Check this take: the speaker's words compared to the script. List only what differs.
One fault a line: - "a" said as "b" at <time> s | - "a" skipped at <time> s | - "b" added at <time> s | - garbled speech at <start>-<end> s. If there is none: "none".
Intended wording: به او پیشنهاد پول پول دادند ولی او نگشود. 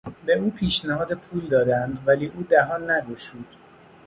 - "پول" skipped at 1.5 s
- "دهان" added at 2.4 s